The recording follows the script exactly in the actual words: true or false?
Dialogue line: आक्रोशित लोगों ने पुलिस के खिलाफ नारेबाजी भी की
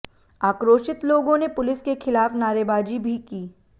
true